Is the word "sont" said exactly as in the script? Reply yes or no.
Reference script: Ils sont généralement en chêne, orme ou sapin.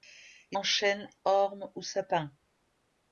no